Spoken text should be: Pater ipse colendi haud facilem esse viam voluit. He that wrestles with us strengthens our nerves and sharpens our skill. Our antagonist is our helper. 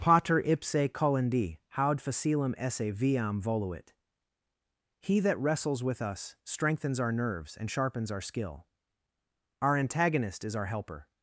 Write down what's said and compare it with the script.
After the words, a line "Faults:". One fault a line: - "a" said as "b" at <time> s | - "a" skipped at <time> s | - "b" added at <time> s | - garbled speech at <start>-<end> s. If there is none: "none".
Pater ipse colendi haud facilem esse viam voluit. He that wrestles with us strengthens our nerves and sharpens our skill. Our antagonist is our helper.
Faults:
none